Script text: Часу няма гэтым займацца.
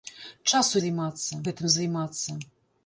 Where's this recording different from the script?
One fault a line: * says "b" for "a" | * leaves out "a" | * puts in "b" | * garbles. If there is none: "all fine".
* says "займацца" for "няма"